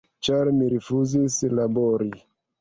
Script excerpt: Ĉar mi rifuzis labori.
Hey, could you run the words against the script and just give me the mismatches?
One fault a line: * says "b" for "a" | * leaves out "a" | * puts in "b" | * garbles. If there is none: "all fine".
all fine